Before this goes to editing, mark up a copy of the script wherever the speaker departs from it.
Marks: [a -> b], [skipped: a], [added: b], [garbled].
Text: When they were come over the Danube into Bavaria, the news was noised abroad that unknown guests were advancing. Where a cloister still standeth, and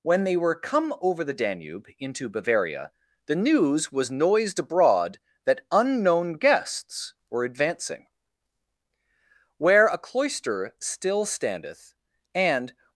When they were come over the Danube into Bavaria, the news was noised abroad that unknown guests were advancing. Where a cloister still standeth, and